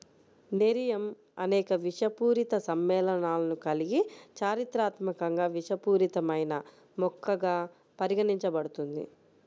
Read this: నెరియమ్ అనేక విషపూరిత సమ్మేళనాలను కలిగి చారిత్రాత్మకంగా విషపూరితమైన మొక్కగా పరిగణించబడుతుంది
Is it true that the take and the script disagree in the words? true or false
false